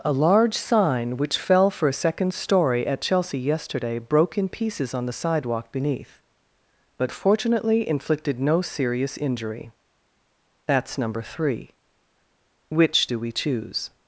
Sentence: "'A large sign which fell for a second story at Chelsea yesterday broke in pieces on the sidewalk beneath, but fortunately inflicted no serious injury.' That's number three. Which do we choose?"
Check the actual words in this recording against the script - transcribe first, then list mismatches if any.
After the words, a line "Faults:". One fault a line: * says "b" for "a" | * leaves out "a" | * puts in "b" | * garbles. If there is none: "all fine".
"'A large sign which fell for a second story at Chelsea yesterday broke in pieces on the sidewalk beneath, but fortunately inflicted no serious injury.' That's number three. Which do we choose?"
Faults:
all fine